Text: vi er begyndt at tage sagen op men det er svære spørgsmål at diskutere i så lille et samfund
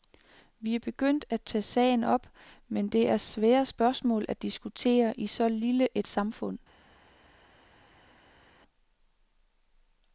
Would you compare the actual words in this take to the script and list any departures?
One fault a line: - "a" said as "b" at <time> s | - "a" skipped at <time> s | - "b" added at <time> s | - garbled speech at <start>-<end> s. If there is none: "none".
none